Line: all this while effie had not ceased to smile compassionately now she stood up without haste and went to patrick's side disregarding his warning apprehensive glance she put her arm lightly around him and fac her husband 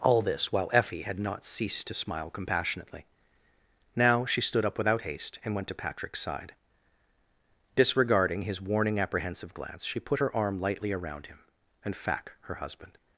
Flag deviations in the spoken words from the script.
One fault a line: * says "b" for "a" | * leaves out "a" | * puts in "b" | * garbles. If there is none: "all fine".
all fine